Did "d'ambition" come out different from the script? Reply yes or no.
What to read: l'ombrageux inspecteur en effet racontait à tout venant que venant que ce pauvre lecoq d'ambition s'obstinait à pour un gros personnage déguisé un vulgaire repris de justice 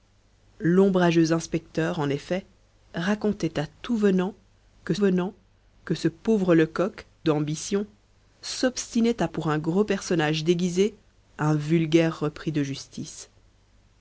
no